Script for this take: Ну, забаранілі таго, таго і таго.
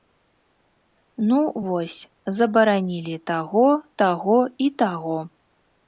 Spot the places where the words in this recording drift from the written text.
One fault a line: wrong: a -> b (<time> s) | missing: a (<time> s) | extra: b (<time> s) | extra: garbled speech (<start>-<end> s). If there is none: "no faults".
extra: вось (1.7 s)